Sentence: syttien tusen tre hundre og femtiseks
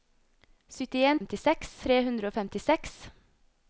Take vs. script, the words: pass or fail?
fail